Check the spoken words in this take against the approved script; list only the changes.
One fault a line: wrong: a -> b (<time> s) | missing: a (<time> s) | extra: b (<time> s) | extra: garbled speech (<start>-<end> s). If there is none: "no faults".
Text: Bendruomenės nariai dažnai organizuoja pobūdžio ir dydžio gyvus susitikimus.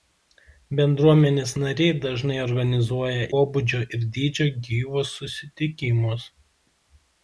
no faults